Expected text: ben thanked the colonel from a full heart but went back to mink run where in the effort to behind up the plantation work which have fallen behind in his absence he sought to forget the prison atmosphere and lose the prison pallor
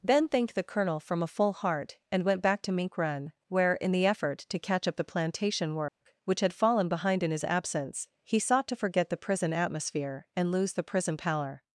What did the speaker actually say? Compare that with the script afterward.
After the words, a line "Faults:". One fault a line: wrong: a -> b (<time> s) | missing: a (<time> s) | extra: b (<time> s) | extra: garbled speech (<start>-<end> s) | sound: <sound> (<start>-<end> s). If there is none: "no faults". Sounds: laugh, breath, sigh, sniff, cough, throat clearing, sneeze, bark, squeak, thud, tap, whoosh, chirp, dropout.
ben thanked the colonel from a full heart and went back to mink run where in the effort to catch up the plantation work which had fallen behind in his absence he sought to forget the prison atmosphere and lose the prison pallor
Faults:
wrong: but -> and (2.1 s)
wrong: behind -> catch (4.6 s)
sound: dropout (5.9-6.0 s)
wrong: have -> had (6.4 s)